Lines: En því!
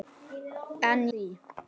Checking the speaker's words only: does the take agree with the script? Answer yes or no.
yes